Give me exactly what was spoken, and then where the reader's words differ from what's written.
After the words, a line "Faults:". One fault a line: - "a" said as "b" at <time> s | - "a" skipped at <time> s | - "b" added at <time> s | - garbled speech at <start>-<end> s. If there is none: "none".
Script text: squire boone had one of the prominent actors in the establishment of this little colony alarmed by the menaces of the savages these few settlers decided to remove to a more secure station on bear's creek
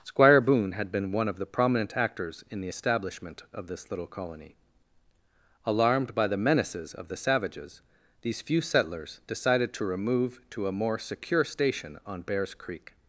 squire boone had been one of the prominent actors in the establishment of this little colony alarmed by the menaces of the savages these few settlers decided to remove to a more secure station on bear's creek
Faults:
- "been" added at 0.9 s